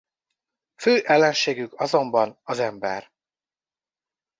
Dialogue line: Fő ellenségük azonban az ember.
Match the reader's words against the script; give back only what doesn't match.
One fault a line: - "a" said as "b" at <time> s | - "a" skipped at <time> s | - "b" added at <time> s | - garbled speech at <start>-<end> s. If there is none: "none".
none